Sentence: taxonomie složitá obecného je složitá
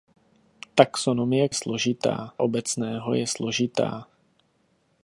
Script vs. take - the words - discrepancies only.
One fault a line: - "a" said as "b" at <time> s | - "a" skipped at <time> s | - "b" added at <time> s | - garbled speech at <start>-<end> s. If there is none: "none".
none